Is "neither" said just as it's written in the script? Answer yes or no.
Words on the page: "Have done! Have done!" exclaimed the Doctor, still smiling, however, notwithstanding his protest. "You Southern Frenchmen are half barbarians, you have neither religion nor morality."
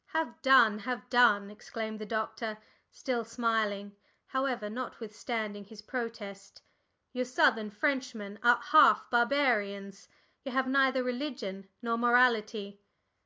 yes